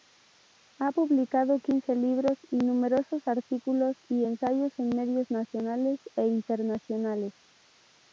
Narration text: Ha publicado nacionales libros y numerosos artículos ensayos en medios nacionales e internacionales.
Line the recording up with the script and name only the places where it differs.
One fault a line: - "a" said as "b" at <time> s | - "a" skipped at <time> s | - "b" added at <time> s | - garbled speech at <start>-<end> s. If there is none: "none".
- "nacionales" said as "quince" at 1.6 s
- "y" added at 4.1 s